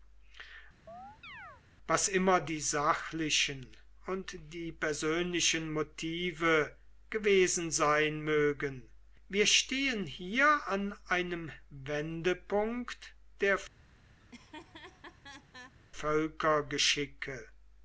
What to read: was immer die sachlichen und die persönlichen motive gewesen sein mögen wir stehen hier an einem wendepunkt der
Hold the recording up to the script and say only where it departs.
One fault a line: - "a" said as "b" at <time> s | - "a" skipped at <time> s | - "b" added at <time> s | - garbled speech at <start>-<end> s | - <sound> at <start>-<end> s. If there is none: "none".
- chirp at 0.9-1.6 s
- laugh at 14.2-15.7 s